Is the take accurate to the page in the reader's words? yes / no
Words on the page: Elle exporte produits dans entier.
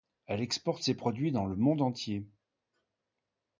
no